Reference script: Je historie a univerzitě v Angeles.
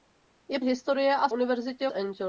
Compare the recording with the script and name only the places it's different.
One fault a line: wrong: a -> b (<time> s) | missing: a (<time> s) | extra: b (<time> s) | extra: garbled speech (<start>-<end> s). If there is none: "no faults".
no faults